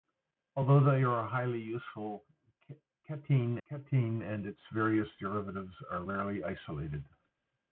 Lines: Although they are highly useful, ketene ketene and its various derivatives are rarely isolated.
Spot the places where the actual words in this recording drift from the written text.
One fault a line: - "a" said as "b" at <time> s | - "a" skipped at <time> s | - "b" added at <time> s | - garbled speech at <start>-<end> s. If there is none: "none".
none